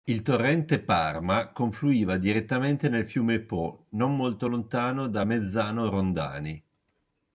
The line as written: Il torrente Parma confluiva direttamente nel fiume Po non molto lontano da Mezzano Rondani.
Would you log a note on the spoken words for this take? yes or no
no